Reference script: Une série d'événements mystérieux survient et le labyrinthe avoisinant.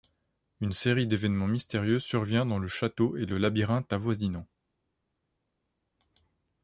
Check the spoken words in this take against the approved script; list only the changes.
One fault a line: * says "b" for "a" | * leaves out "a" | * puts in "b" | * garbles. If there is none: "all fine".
* puts in "dans le château"